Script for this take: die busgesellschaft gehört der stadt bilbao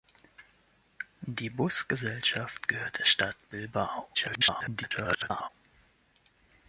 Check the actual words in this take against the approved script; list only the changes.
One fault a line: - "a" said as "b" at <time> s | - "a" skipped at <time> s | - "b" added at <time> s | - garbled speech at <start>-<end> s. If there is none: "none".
- garbled speech at 4.1-5.5 s